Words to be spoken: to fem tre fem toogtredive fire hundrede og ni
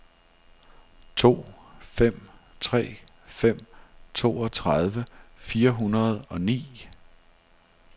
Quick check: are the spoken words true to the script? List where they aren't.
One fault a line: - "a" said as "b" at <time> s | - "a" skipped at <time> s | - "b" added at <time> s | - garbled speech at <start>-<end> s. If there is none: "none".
none